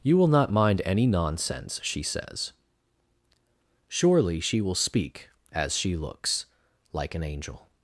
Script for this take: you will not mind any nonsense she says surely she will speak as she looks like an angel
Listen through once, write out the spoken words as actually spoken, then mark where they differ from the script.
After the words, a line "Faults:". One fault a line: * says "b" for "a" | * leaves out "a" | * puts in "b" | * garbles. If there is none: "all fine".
you will not mind any nonsense she says surely she will speak as she looks like an angel
Faults:
all fine